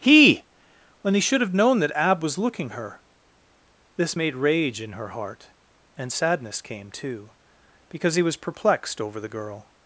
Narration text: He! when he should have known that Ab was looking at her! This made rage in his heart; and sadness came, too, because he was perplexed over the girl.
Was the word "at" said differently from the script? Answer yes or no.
yes